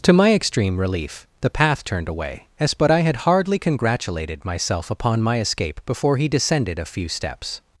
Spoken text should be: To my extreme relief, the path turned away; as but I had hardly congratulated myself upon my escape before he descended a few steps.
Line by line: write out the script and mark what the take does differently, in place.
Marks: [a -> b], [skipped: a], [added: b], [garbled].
To my extreme relief, the path turned away; as but I had hardly congratulated myself upon my escape before he descended a few steps.